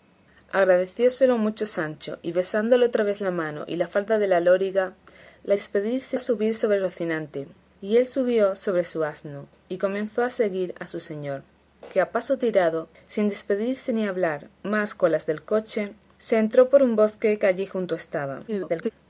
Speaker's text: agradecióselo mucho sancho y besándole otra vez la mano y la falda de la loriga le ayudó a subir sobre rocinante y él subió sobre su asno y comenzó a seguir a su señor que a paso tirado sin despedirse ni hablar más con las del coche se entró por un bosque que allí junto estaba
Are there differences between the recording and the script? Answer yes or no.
yes